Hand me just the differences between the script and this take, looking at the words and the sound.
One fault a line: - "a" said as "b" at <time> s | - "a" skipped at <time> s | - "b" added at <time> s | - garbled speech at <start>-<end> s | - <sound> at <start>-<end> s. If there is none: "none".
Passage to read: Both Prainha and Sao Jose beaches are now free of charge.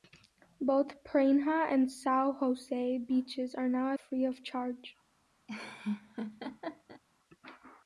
- laugh at 5.5-7.0 s